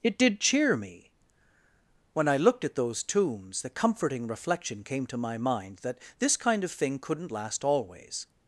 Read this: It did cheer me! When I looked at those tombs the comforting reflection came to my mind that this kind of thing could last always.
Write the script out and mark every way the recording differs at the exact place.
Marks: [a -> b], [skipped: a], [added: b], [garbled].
It did cheer me! When I looked at those tombs the comforting reflection came to my mind that this kind of thing [could -> couldn't] last always.